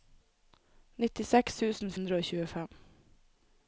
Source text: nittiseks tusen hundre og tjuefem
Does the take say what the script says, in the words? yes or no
yes